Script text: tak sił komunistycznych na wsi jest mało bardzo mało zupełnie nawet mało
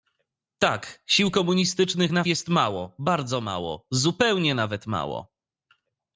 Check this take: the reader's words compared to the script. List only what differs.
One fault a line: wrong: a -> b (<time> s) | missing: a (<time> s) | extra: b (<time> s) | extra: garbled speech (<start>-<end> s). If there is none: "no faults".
missing: wsi (2.2 s)